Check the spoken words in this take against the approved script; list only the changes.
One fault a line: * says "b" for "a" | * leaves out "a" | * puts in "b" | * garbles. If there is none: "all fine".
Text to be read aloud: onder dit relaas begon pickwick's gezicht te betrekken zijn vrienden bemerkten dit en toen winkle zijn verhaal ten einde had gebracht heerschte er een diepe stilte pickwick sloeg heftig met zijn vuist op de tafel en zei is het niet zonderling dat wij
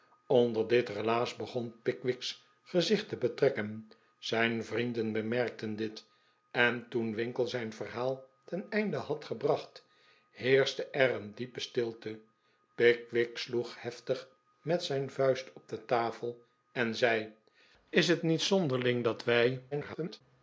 * garbles